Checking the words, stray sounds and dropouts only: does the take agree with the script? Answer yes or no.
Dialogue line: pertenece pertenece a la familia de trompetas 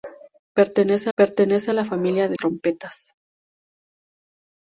yes